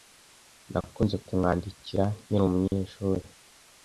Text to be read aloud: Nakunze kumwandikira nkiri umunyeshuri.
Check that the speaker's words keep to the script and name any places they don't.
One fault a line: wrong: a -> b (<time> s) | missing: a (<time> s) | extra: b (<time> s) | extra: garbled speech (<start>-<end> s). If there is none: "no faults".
no faults